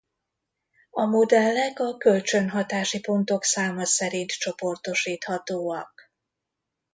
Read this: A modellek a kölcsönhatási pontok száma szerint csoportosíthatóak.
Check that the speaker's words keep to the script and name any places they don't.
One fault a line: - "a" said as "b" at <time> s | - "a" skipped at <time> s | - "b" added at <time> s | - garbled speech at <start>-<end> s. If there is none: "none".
none